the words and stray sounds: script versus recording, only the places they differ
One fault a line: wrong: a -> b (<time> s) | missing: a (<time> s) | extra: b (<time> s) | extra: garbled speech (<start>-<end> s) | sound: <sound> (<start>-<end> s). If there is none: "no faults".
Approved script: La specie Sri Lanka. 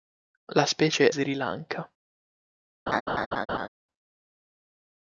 sound: laugh (2.9-3.7 s)